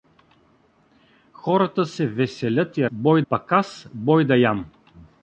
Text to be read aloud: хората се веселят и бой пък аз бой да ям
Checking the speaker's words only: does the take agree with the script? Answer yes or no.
yes